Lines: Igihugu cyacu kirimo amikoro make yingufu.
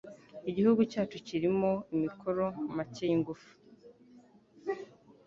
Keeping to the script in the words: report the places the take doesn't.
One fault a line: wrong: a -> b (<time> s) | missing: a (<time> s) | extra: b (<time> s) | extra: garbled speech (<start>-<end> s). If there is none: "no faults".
no faults